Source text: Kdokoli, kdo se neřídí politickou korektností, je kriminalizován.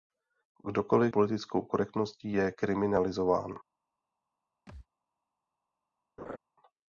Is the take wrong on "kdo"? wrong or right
wrong